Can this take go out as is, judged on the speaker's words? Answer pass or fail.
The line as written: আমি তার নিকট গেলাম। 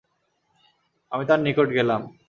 pass